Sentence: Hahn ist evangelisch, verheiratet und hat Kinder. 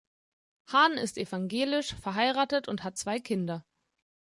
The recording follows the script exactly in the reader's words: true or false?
false